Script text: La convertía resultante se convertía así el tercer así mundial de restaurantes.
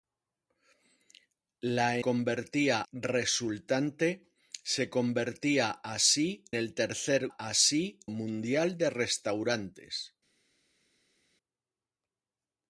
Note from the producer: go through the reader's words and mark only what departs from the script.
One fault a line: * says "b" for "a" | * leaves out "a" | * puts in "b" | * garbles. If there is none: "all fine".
all fine